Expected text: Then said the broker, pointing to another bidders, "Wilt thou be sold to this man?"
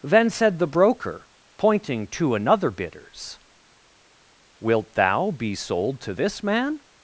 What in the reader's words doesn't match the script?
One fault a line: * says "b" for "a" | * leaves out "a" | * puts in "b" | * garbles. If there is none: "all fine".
all fine